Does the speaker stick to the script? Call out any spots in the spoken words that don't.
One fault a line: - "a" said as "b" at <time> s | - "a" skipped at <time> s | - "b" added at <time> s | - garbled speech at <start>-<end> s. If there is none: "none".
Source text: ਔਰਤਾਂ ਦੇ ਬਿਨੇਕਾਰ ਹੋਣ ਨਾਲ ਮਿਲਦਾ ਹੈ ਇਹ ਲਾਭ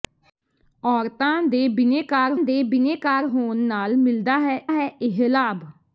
- "ਦੇ ਬਿਨੇਕਾਰ" added at 2.4 s
- "ਹੈ" added at 4.7 s